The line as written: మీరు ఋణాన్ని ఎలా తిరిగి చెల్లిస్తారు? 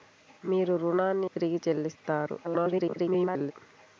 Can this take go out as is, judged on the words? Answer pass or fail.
fail